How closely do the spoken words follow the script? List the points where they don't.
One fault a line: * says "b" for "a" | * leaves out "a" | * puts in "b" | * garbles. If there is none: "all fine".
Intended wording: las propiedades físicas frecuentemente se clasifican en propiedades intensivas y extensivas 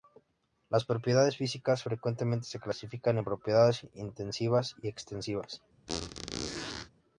all fine